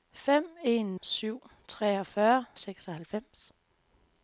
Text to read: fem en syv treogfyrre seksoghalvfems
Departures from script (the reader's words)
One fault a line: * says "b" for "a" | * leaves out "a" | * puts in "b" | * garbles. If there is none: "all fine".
all fine